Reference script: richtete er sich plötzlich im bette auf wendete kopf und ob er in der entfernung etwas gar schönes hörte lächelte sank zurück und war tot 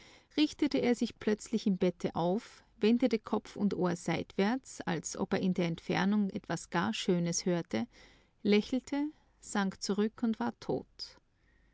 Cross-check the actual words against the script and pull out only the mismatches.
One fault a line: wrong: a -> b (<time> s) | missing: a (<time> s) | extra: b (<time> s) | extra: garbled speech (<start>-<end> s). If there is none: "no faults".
extra: ohr seitwärts als (3.7 s)